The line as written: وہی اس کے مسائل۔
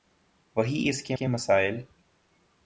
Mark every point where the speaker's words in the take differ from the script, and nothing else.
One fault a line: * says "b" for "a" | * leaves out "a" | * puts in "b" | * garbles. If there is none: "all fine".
* puts in "کے"